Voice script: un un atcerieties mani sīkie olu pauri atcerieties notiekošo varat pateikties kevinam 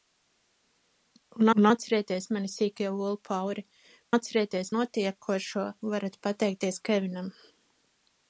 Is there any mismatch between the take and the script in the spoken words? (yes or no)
no